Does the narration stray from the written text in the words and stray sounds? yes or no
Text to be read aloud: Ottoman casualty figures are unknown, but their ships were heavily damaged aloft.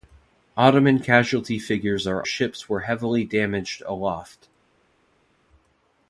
yes